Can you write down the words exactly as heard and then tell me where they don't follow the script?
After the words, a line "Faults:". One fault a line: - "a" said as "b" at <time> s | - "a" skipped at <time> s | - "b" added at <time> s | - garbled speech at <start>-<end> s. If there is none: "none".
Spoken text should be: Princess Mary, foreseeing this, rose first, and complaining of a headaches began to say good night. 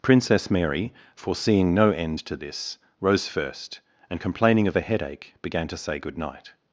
Princess Mary, foreseeing no end to this, rose first, and complaining of a headache began to say good night.
Faults:
- "no end to" added at 1.8 s
- "headaches" said as "headache" at 4.8 s